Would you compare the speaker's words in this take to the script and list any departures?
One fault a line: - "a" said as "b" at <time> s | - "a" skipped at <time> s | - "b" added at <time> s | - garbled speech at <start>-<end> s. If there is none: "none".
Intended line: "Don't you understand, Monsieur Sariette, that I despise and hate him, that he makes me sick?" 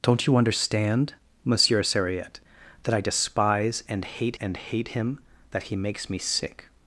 - "and hate" added at 4.4 s